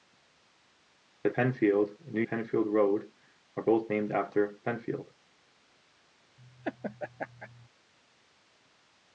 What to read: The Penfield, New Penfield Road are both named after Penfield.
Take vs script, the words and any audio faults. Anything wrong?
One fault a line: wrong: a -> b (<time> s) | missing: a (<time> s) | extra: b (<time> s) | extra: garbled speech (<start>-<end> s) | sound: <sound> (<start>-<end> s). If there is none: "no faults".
sound: laugh (6.4-7.7 s)